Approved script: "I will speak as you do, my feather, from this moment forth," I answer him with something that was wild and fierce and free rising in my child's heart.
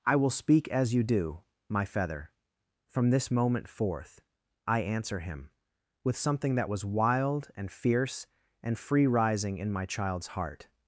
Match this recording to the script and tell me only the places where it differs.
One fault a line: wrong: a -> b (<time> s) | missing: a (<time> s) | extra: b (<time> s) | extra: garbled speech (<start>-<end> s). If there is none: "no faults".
no faults